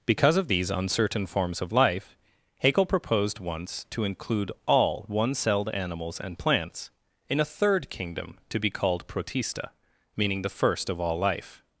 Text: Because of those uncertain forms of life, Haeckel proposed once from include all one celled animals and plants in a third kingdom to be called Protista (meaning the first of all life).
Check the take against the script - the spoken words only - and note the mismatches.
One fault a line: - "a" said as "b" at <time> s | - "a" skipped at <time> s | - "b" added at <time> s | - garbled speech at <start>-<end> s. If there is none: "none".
- "those" said as "these" at 0.5 s
- "from" said as "to" at 3.9 s